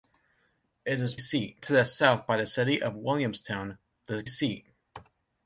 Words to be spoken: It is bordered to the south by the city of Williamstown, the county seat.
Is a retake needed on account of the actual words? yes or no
yes